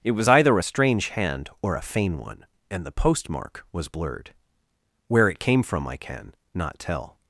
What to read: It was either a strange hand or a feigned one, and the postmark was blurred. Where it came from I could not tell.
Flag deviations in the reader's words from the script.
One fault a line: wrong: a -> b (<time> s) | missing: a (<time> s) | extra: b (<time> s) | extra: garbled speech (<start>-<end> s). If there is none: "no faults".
wrong: feigned -> feign (1.8 s)
wrong: could -> can (6.0 s)